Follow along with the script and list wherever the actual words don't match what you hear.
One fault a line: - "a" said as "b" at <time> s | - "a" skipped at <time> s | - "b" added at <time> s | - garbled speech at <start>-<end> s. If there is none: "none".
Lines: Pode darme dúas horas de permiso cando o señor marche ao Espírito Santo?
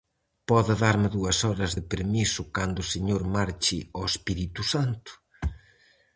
none